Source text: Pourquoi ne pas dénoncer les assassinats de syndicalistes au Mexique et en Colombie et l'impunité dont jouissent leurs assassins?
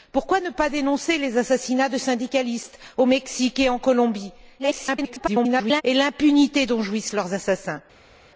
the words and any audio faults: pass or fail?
fail